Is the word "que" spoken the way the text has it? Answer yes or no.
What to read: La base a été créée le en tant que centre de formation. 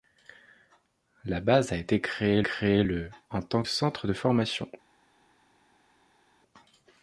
no